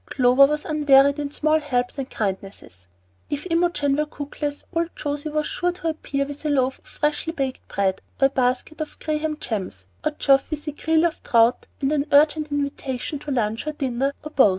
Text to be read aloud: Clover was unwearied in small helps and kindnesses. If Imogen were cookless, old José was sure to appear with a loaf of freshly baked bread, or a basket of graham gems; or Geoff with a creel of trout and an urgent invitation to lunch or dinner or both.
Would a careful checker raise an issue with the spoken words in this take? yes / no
no